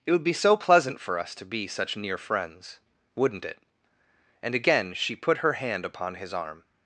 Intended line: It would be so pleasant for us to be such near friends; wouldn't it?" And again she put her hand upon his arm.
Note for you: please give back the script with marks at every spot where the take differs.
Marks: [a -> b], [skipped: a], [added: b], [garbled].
It would be so pleasant for us to be such near friends; wouldn't it?" And again she put her hand upon his arm.